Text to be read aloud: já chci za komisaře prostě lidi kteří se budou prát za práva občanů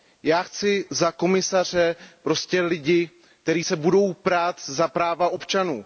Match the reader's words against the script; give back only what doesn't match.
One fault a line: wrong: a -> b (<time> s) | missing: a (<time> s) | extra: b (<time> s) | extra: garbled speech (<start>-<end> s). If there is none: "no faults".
no faults